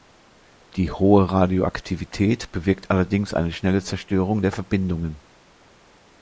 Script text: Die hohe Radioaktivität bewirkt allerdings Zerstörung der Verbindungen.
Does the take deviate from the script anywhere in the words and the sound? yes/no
yes